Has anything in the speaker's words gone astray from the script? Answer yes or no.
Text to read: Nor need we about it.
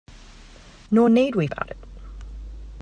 no